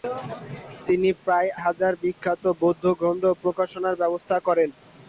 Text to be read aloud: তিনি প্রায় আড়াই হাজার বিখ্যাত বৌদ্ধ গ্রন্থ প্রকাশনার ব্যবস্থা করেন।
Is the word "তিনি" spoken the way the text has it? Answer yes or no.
yes